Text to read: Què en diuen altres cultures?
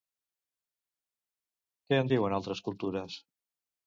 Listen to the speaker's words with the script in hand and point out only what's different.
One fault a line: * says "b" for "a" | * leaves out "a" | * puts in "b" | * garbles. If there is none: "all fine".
all fine